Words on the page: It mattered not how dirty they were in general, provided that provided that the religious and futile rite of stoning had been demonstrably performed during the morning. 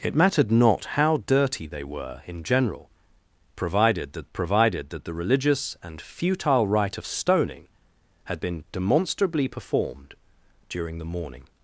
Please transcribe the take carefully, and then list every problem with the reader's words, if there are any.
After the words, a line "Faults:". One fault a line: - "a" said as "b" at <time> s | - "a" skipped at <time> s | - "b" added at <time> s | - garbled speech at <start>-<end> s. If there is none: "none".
It mattered not how dirty they were in general, provided that provided that the religious and futile rite of stoning had been demonstrably performed during the morning.
Faults:
none